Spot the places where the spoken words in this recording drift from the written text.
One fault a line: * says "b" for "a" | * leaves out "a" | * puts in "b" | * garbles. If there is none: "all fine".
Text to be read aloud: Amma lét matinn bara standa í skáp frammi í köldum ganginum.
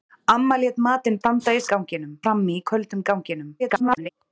* leaves out "bara"
* says "ganginum" for "skáp"
* garbles